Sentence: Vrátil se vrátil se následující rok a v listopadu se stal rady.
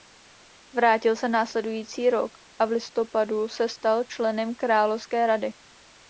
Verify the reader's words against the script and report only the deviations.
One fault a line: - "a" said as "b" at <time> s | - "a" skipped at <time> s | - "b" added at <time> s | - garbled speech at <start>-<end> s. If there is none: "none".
- "vrátil se" skipped at 1.3 s
- "členem královské" added at 4.0 s